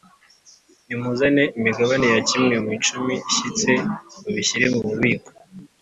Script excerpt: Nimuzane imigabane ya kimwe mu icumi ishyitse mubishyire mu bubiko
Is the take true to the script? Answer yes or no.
yes